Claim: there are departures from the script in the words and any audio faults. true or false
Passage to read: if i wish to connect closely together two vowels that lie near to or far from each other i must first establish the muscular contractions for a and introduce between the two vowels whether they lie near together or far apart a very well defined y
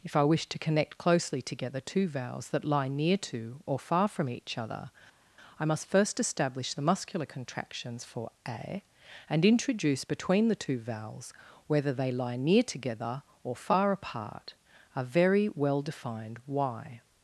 false